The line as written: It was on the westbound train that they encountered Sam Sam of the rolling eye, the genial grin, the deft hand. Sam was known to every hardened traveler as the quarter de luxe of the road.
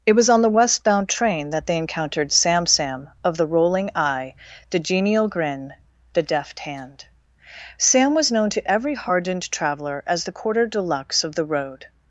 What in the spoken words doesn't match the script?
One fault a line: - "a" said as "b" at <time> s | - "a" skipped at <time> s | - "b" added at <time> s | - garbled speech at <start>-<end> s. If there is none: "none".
none